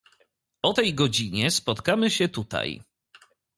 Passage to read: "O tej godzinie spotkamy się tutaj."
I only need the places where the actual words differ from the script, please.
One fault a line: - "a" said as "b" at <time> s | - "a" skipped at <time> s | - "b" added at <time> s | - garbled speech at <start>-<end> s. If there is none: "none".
none